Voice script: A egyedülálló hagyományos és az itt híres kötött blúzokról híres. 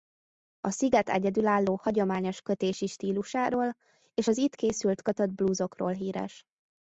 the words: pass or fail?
fail